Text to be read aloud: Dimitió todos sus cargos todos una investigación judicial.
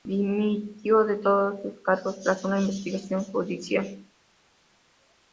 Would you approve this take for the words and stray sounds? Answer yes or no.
no